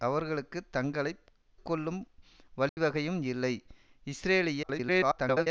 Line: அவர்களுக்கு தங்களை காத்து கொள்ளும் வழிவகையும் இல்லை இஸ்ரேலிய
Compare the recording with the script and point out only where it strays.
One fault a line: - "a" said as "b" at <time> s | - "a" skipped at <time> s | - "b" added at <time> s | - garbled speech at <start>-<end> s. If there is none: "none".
- "காத்து" skipped at 1.1 s
- garbled speech at 4.6-5.5 s